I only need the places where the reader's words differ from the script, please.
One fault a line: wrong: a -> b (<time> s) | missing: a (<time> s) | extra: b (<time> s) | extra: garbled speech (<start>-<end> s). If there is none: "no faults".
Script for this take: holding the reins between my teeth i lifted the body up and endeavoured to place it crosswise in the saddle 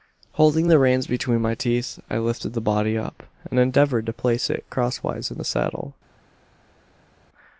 no faults